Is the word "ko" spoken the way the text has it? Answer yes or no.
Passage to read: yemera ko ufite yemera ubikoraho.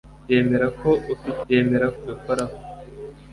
yes